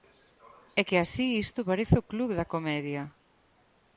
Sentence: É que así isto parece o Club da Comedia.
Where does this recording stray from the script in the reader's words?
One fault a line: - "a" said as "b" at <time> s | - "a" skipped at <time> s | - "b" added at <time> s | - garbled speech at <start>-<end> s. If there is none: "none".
none